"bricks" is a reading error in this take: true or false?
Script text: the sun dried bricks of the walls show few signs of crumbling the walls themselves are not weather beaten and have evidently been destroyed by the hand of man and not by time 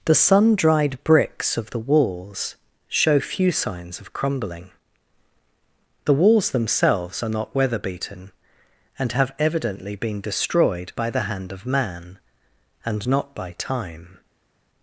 false